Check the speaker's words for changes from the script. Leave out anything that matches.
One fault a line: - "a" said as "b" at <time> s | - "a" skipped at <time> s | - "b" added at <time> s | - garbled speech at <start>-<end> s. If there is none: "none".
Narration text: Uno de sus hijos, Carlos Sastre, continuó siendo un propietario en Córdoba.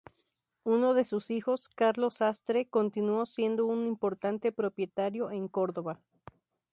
- "importante" added at 3.9 s